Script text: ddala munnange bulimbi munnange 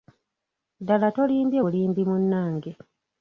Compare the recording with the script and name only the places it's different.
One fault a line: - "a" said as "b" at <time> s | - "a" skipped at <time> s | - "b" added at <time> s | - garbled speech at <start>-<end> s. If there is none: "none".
- "munnange" said as "tolimbye" at 1.2 s